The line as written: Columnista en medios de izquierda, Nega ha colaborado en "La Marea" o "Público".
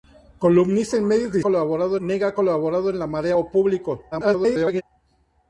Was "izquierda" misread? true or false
true